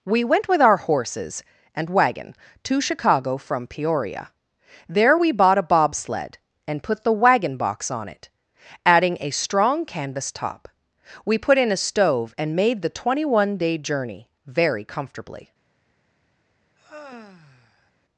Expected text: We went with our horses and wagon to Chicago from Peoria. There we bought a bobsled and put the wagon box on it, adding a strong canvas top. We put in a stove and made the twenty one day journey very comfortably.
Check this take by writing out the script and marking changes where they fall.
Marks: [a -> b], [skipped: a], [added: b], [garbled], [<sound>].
We went with our horses and wagon to Chicago from Peoria. There we bought a bobsled and put the wagon box on it, adding a strong canvas top. We put in a stove and made the twenty one day journey very comfortably. [sigh]